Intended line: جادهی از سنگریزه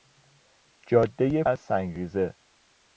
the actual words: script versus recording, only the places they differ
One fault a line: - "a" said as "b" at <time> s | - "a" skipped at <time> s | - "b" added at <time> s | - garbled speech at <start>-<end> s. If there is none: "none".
none